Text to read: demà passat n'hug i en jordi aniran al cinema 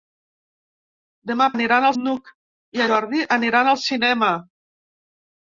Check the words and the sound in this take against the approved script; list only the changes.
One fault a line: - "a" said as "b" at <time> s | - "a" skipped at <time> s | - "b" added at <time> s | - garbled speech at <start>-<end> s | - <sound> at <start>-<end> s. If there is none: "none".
- "passat" said as "aniran" at 1.6 s
- "en" skipped at 2.8 s